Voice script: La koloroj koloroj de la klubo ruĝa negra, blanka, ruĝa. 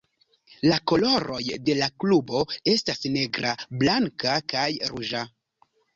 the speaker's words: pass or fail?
fail